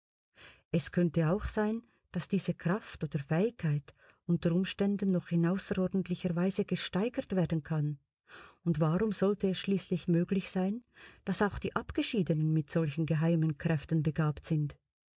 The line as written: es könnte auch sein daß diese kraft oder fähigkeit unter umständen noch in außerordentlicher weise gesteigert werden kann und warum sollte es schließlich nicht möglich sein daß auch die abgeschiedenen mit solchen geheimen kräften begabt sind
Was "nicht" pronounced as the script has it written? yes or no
no